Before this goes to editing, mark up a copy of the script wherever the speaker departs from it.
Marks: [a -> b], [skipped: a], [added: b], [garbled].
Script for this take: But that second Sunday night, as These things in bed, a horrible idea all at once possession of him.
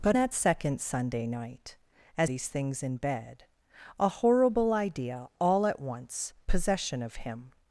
But that second Sunday night, as These things in bed, a horrible idea all at once possession of him.